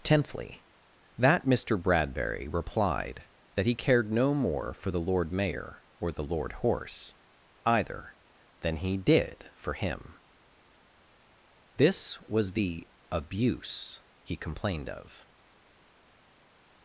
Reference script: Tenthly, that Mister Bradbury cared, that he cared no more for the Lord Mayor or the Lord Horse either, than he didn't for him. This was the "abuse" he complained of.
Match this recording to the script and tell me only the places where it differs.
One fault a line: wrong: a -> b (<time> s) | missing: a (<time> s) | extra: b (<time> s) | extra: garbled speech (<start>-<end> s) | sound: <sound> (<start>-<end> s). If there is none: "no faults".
wrong: cared -> replied (2.5 s)
wrong: didn't -> did (9.0 s)